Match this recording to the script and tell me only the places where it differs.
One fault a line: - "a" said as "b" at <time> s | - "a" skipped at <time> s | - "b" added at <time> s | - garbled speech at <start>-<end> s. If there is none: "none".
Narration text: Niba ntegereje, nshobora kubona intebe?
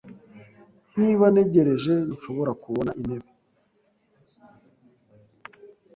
none